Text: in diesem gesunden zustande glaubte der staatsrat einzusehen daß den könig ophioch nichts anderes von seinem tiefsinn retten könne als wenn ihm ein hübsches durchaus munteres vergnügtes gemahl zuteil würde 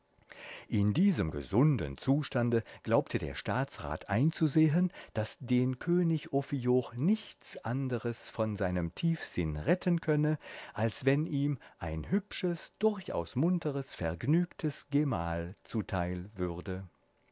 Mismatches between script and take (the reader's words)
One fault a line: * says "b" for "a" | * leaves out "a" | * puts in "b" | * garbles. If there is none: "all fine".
all fine